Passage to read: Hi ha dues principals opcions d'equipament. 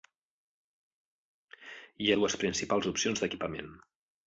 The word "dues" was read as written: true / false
true